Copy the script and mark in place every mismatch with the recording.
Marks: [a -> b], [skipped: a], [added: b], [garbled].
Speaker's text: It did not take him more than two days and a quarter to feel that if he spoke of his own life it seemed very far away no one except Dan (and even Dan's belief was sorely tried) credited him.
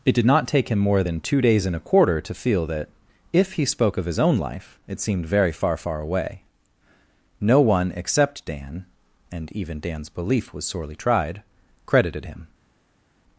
It did not take him more than two days and a quarter to feel that if he spoke of his own life it seemed very far [added: far] away no one except Dan (and even Dan's belief was sorely tried) credited him.